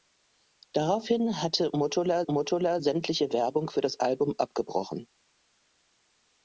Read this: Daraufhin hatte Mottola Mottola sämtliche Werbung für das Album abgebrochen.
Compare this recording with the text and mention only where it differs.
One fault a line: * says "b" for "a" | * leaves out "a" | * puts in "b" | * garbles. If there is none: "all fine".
all fine